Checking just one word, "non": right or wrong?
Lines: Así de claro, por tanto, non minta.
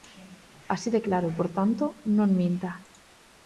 right